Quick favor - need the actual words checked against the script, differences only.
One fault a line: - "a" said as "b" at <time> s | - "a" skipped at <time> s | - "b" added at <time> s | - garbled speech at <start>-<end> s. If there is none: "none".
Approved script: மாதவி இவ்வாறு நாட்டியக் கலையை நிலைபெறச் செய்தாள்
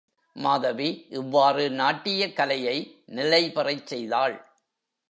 none